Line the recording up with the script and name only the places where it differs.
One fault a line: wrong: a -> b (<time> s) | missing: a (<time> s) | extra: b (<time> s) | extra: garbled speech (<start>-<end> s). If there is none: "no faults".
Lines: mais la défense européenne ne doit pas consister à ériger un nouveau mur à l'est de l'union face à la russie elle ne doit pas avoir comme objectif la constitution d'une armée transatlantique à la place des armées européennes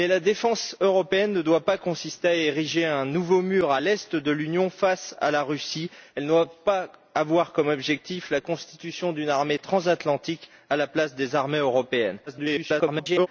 extra: garbled speech (12.3-13.3 s)